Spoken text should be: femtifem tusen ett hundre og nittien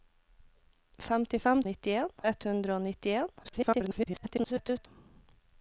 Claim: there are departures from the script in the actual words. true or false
true